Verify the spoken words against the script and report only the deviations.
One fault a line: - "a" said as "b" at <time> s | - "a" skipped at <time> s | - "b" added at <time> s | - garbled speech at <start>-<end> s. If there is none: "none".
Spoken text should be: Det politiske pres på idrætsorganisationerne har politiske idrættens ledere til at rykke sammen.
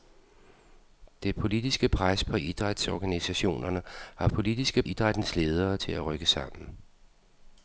none